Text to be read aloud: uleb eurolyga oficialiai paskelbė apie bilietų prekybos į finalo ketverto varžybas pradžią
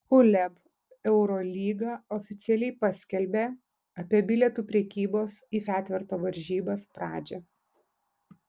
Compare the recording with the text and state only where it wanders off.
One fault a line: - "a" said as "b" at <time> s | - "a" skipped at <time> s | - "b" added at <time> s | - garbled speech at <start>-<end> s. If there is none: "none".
- "finalo" skipped at 5.6 s